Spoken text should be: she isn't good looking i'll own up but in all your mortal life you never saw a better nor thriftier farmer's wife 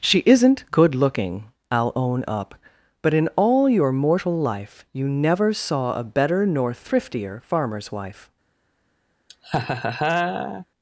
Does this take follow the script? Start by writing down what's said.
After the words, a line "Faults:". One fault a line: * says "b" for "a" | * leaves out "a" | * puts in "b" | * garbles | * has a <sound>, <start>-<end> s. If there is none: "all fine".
she isn't good looking i'll own up but in all your mortal life you never saw a better nor thriftier farmer's wife
Faults:
* has a laugh, 9.3-10.7 s